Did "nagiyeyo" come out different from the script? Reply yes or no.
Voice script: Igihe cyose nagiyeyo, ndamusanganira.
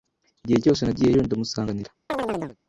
no